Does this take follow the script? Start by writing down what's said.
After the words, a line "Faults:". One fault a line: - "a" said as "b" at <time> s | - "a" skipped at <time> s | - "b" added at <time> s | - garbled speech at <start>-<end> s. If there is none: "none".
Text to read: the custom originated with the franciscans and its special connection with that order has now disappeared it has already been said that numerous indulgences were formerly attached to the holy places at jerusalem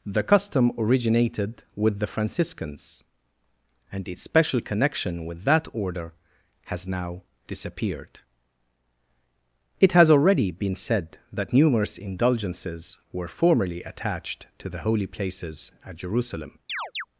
the custom originated with the franciscans and its special connection with that order has now disappeared it has already been said that numerous indulgences were formerly attached to the holy places at jerusalem
Faults:
none